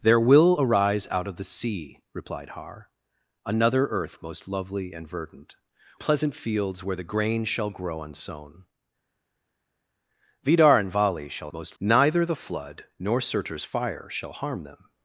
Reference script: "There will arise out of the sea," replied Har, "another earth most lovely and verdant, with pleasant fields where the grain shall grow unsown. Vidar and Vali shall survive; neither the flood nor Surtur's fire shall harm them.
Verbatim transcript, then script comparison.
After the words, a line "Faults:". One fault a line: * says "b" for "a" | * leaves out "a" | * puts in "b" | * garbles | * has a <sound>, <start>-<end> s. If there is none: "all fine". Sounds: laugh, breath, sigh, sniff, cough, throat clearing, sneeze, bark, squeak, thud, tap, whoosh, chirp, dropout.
"There will arise out of the sea," replied Har, "another earth most lovely and verdant, pleasant fields where the grain shall grow unsown. Vidar and Vali shall most; neither the flood nor Surtur's fire shall harm them.
Faults:
* leaves out "with"
* says "most" for "survive"